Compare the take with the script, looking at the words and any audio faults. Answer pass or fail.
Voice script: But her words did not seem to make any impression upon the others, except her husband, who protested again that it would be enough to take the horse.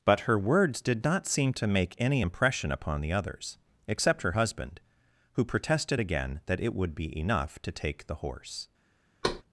fail